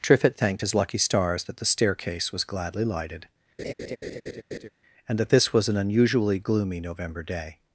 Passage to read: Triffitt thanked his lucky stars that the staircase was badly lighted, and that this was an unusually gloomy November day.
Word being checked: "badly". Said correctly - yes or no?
no